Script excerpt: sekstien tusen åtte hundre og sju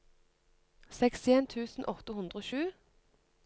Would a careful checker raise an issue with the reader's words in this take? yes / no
no